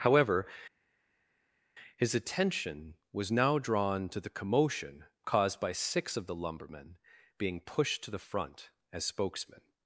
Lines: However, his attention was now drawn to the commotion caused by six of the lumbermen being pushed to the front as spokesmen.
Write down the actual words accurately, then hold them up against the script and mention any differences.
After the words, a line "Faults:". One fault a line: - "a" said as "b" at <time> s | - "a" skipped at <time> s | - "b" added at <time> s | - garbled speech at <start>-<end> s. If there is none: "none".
However, his attention was now drawn to the commotion caused by six of the lumbermen being pushed to the front as spokesmen.
Faults:
none